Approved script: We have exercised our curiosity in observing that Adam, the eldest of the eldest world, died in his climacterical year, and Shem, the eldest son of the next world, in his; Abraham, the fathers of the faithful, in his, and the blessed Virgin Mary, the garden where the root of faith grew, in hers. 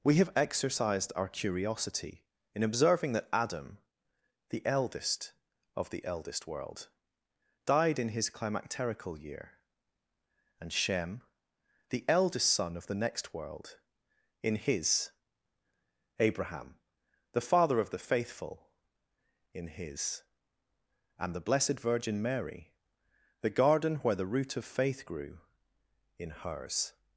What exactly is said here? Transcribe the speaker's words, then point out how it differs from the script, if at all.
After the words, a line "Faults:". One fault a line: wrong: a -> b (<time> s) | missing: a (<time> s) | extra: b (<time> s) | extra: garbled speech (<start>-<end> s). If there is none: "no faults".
We have exercised our curiosity in observing that Adam, the eldest of the eldest world, died in his climacterical year, and Shem, the eldest son of the next world, in his; Abraham, the father of the faithful, in his, and the blessed Virgin Mary, the garden where the root of faith grew, in hers.
Faults:
wrong: fathers -> father (17.5 s)